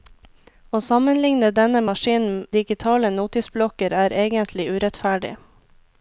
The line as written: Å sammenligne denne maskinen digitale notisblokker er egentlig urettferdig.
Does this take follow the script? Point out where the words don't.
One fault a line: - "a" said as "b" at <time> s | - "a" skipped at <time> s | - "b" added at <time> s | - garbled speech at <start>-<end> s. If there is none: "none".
none